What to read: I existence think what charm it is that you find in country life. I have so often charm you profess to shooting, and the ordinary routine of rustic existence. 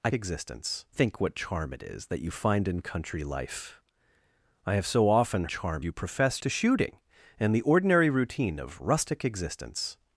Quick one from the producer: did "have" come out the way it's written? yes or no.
yes